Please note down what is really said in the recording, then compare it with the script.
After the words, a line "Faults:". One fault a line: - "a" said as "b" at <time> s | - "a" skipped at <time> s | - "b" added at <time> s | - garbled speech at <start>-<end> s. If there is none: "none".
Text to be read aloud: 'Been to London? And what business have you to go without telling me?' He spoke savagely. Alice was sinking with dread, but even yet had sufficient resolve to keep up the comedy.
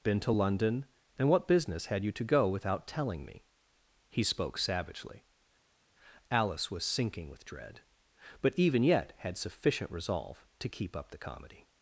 'Been to London? And what business had you to go without telling me?' He spoke savagely. Alice was sinking with dread, but even yet had sufficient resolve to keep up the comedy.
Faults:
- "have" said as "had" at 1.9 s